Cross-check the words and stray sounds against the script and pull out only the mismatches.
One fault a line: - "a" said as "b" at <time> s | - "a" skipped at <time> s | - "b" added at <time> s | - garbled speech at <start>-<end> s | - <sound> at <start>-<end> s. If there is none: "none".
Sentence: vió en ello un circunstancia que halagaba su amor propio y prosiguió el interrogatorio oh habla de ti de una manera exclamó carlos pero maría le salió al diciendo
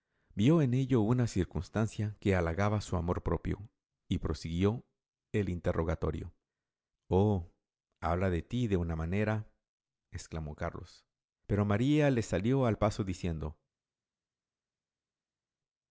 - "un" said as "una" at 1.0 s
- "paso" added at 12.8 s